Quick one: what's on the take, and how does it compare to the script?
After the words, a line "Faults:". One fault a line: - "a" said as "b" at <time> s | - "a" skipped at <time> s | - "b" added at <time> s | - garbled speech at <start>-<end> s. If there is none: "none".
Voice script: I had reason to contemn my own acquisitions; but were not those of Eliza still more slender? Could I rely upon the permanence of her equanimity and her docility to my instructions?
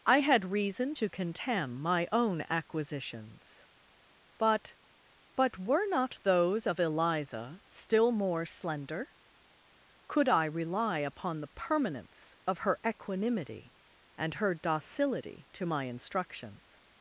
I had reason to contemn my own acquisitions; but but were not those of Eliza still more slender? Could I rely upon the permanence of her equanimity and her docility to my instructions?
Faults:
- "but" added at 5.3 s